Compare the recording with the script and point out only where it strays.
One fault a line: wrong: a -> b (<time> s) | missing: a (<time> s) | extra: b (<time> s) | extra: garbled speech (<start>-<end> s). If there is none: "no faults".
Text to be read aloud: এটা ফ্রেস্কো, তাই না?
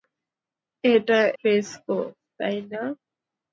no faults